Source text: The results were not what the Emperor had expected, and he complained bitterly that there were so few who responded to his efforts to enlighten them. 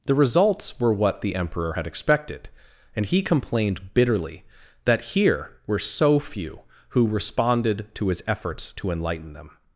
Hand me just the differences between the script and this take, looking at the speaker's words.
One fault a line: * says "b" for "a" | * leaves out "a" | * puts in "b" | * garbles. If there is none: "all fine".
* leaves out "not"
* says "here" for "there"